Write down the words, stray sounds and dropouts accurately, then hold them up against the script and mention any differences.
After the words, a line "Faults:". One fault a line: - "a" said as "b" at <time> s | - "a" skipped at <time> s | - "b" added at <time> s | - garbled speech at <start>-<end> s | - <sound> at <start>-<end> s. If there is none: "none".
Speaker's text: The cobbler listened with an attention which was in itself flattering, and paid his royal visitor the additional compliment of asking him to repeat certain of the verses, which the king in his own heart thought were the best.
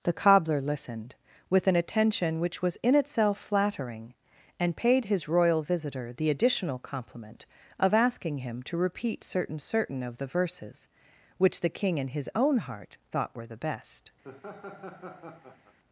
The cobbler listened with an attention which was in itself flattering, and paid his royal visitor the additional compliment of asking him to repeat certain certain of the verses, which the king in his own heart thought were the best.
Faults:
- "certain" added at 9.6 s
- laugh at 14.2-15.8 s